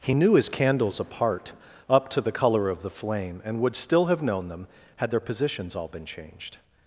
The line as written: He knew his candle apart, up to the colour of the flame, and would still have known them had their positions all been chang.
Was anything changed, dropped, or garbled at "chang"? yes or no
yes